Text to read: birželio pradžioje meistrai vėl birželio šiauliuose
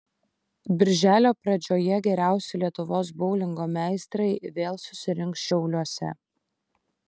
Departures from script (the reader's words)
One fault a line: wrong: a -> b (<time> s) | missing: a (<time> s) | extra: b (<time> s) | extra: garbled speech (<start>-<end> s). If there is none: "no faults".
extra: geriausi lietuvos boulingo (2.1 s)
wrong: birželio -> susirinks (4.9 s)